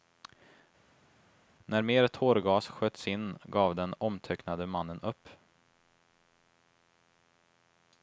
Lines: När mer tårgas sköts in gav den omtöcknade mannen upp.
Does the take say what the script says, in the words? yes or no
yes